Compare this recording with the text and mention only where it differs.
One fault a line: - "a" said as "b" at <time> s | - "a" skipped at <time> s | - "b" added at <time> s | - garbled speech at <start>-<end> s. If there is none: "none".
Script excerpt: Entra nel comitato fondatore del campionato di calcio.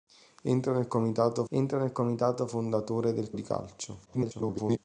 - "entra nel comitato" added at 1.5 s
- "campionato" skipped at 3.3 s
- garbled speech at 4.1-4.8 s